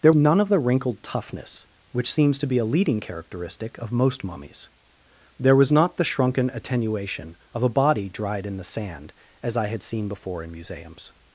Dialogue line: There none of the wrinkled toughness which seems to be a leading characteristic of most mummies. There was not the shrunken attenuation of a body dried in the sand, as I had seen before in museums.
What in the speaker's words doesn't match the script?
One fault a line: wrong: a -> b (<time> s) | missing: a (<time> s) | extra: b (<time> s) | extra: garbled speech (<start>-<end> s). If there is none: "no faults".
no faults